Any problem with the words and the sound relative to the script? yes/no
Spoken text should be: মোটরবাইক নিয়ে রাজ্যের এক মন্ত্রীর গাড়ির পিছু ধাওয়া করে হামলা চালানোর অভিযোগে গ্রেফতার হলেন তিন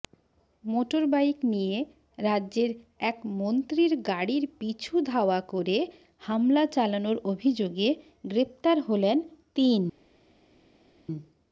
no